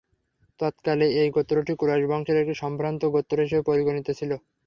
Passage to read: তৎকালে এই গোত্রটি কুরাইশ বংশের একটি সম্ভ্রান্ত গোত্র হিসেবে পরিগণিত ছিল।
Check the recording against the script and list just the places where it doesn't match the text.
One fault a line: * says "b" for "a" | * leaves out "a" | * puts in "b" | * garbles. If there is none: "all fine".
all fine